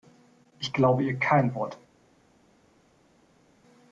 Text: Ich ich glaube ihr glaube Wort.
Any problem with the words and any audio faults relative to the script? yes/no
yes